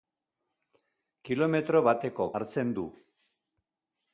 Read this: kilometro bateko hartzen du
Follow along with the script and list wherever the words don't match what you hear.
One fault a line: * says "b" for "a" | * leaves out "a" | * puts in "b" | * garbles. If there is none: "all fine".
all fine